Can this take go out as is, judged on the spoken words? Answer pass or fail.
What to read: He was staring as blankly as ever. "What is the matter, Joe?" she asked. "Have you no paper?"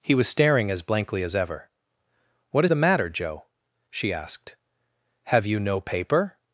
fail